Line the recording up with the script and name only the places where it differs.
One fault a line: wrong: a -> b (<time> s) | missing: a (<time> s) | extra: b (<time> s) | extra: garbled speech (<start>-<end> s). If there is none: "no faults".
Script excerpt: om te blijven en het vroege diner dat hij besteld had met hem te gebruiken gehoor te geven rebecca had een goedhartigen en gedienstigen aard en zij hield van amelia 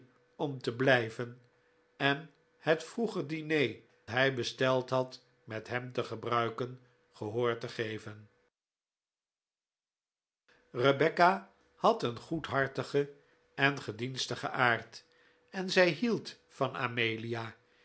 missing: dat (3.8 s)